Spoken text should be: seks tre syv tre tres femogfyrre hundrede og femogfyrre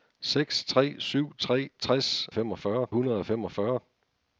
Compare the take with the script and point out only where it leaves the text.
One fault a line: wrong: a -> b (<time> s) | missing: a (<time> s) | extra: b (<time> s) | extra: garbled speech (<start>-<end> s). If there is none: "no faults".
no faults